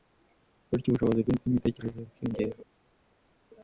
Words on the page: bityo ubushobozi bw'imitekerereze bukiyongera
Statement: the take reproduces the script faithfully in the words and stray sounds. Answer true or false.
false